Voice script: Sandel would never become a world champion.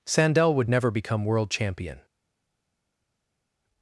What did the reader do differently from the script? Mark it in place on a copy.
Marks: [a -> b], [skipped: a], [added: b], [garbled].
Sandel would never become [skipped: a] world champion.